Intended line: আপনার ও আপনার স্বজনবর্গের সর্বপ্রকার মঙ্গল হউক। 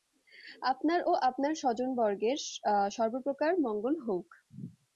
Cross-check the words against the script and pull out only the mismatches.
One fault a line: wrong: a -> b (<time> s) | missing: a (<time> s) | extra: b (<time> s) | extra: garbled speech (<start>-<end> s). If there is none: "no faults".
no faults